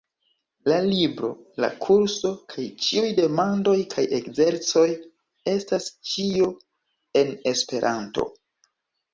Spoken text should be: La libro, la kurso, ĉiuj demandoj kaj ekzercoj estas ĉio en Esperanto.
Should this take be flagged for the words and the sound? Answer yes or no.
yes